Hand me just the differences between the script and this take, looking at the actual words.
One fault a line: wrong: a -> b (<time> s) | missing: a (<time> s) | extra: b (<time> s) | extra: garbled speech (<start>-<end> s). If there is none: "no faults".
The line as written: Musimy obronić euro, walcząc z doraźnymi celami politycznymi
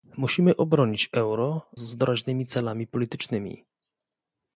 missing: walcząc (1.7 s)